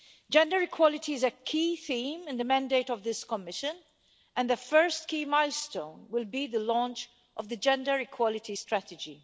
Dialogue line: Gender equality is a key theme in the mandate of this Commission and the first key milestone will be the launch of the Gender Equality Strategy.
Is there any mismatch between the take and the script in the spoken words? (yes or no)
no